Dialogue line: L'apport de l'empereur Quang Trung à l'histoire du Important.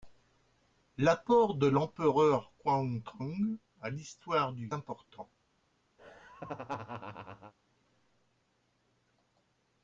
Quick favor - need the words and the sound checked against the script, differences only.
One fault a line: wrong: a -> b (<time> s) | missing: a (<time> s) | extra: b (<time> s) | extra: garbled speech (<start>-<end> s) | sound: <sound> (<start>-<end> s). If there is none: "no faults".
sound: laugh (6.0-7.5 s)